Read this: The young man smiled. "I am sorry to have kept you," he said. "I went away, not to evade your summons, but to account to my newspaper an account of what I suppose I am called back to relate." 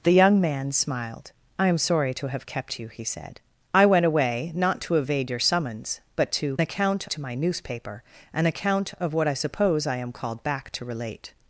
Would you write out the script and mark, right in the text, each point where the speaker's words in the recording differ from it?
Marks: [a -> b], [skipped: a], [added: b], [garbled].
The young man smiled. "I am sorry to have kept you," he said. "I went away, not to evade your summons, but to account to my newspaper an account of what I suppose I am called back to relate."